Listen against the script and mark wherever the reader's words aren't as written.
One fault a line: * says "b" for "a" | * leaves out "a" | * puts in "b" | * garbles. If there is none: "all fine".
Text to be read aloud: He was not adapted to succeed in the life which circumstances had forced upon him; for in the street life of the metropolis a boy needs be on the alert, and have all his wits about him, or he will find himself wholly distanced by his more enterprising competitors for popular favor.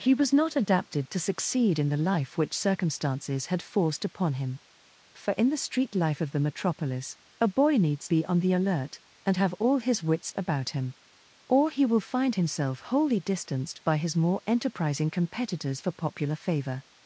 all fine